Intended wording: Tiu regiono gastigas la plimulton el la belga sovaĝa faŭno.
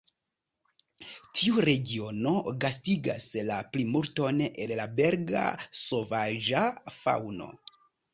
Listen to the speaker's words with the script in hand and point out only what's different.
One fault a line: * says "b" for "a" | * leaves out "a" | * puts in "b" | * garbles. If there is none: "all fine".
all fine